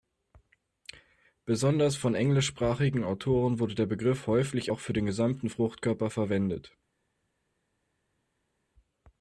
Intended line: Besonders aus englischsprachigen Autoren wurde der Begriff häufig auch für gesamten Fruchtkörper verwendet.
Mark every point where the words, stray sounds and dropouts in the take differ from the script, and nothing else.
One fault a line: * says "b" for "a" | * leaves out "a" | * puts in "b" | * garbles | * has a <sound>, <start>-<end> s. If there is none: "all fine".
* says "von" for "aus"
* puts in "den"